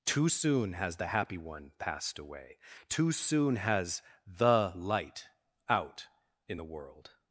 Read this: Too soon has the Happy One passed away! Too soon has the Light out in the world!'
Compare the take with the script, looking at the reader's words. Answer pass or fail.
pass